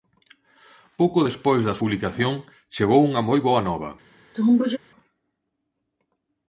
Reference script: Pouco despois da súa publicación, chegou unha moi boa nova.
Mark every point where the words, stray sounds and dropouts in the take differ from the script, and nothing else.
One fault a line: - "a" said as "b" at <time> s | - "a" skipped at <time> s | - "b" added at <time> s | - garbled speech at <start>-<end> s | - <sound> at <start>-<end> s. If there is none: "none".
- "súa" skipped at 1.8 s
- sneeze at 4.3-4.8 s